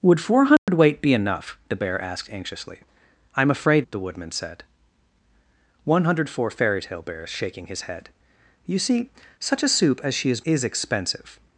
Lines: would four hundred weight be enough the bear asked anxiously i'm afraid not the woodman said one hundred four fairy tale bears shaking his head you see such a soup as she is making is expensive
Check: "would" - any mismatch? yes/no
no